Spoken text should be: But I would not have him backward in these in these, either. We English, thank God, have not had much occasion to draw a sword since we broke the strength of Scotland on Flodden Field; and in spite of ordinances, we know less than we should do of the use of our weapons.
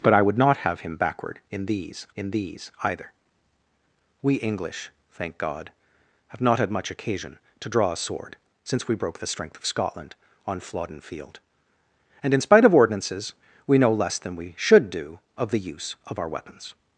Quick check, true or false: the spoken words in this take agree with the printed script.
true